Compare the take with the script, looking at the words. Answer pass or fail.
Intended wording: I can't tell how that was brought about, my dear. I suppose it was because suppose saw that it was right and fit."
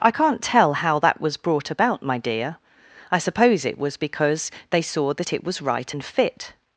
fail